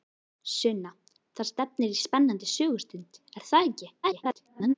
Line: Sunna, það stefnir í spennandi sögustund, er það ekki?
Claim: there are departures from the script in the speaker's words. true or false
true